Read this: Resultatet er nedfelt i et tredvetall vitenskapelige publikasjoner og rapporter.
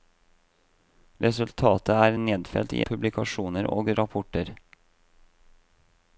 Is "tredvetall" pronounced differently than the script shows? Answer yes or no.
yes